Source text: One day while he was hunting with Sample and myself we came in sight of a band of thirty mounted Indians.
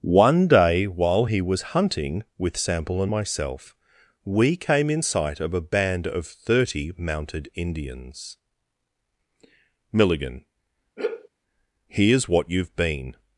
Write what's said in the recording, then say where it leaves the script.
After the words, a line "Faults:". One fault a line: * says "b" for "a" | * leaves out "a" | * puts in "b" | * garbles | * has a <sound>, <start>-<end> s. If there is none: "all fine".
One day while he was hunting with Sample and myself we came in sight of a band of thirty mounted Indians. "Milligan, here's what you've been
Faults:
* puts in "Milligan here's what you've been"
* has a sigh, 11.0-11.3 s